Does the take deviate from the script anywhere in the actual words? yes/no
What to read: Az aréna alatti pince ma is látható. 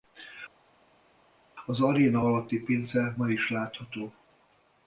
no